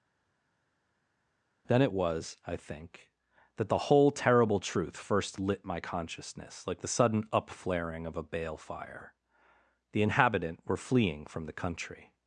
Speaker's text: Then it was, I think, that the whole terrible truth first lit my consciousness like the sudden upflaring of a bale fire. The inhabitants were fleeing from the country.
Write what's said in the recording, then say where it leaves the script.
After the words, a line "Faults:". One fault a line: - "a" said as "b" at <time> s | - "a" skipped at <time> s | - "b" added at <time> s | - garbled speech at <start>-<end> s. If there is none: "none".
Then it was, I think, that the whole terrible truth first lit my consciousness like the sudden upflaring of a bale fire. The inhabitant were fleeing from the country.
Faults:
- "inhabitants" said as "inhabitant" at 10.0 s